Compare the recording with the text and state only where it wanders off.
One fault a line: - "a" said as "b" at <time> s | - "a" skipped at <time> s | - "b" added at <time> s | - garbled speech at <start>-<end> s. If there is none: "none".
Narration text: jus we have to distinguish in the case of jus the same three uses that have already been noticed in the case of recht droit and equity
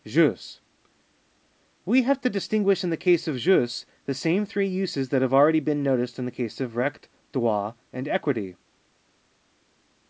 none